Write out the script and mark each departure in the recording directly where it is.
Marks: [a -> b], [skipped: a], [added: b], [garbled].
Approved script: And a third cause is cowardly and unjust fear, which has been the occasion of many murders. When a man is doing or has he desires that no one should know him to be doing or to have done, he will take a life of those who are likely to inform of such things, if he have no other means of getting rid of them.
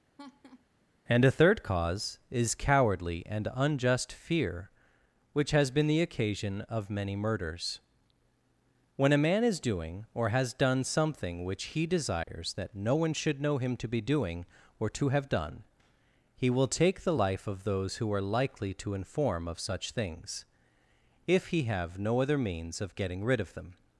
And a third cause is cowardly and unjust fear, which has been the occasion of many murders. When a man is doing or has [added: done something which] he desires that no one should know him to be doing or to have done, he will take [a -> the] life of those who are likely to inform of such things, if he have no other means of getting rid of them.